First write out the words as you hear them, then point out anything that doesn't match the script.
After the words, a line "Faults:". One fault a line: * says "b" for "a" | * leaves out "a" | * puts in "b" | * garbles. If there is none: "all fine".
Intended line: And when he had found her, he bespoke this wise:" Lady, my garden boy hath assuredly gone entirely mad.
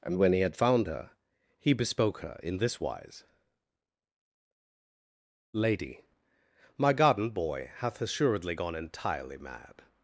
And when he had found her, he bespoke her in this wise:" Lady, my garden boy hath assuredly gone entirely mad.
Faults:
* puts in "her in"